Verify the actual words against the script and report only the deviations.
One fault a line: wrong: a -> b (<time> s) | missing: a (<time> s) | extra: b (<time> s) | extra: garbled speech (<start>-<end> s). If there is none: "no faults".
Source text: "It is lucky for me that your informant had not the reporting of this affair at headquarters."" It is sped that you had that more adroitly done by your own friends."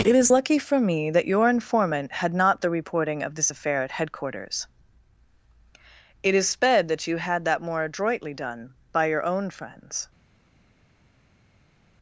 no faults